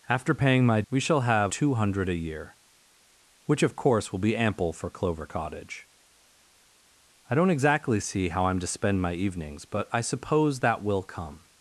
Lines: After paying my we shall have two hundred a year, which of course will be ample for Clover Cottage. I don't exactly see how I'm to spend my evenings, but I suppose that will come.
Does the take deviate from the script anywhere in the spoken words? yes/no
no